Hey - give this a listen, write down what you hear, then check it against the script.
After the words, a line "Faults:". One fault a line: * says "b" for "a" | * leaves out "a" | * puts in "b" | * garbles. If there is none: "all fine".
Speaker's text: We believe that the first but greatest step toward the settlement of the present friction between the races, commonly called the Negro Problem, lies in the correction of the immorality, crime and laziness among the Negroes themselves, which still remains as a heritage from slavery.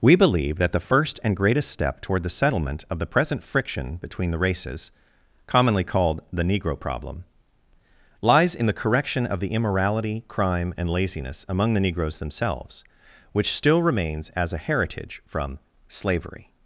We believe that the first and greatest step toward the settlement of the present friction between the races, commonly called the Negro Problem, lies in the correction of the immorality, crime and laziness among the Negroes themselves, which still remains as a heritage from slavery.
Faults:
* says "and" for "but"